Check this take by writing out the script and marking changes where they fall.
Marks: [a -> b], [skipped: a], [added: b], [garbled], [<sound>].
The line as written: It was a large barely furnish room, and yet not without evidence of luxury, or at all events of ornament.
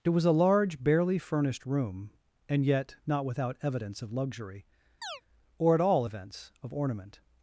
It was a large barely [furnish -> furnished] room, and yet not without evidence of luxury, [chirp] or at all events of ornament.